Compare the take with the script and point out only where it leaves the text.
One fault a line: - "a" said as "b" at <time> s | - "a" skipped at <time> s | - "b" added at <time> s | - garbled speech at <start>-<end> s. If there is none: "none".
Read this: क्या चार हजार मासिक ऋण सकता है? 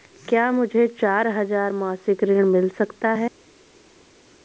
- "मुझे" added at 0.5 s
- "मिल" added at 2.4 s